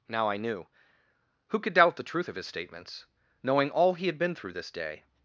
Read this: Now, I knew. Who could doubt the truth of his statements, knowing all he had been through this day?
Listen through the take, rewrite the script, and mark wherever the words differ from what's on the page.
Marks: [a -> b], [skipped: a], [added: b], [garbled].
Now, I knew. Who could doubt the truth of his statements, knowing all he had been through this day?